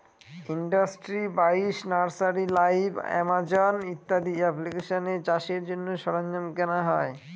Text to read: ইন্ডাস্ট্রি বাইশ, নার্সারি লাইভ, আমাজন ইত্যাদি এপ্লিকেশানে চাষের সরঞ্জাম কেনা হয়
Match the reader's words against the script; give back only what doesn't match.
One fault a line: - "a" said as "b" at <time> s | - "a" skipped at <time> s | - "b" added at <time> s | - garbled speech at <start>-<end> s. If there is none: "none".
- "জন্য" added at 5.7 s